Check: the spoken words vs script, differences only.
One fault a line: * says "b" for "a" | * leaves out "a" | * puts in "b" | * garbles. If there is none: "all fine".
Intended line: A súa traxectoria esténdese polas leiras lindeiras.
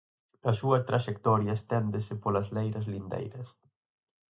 all fine